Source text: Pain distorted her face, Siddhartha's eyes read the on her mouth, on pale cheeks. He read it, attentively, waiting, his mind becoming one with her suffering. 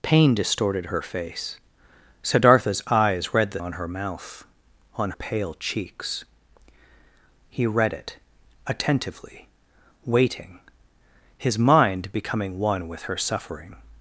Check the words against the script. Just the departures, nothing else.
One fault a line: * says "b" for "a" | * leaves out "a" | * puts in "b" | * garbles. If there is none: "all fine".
all fine